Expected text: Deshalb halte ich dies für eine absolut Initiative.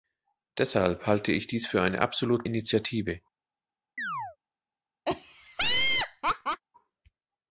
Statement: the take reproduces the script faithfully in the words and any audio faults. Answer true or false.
false